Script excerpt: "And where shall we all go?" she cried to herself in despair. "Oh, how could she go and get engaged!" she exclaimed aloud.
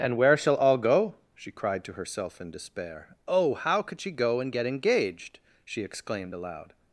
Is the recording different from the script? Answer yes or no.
yes